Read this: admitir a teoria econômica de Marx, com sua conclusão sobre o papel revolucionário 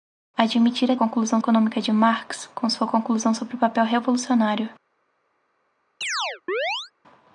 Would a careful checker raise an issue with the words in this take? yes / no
yes